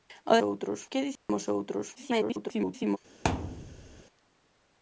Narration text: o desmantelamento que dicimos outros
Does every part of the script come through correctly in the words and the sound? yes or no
no